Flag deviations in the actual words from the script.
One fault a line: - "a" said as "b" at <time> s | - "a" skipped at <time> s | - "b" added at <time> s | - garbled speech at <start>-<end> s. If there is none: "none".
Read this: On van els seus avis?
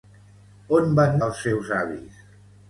none